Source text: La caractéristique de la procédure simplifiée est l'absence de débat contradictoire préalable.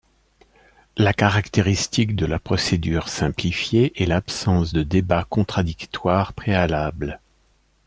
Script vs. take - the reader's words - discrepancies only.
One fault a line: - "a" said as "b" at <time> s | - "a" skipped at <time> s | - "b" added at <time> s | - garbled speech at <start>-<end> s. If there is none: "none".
none